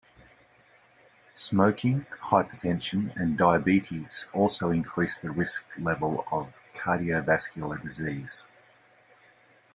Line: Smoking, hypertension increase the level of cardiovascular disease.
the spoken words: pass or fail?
fail